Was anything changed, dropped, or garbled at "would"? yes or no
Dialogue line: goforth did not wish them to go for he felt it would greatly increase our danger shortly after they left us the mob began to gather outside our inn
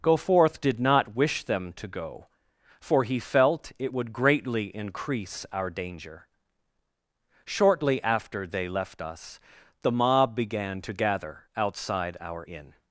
no